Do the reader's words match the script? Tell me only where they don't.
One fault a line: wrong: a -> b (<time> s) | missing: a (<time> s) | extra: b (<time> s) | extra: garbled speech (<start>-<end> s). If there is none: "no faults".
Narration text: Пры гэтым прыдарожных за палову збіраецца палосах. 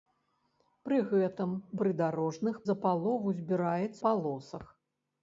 no faults